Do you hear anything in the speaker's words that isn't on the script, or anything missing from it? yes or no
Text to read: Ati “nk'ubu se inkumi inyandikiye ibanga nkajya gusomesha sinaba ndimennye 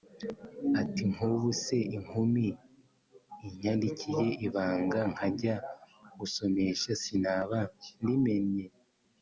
no